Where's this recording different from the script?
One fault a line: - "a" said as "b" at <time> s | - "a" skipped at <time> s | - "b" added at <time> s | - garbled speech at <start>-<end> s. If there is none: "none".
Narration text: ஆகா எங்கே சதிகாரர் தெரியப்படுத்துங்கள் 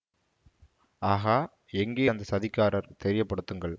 - "அந்த" added at 2.1 s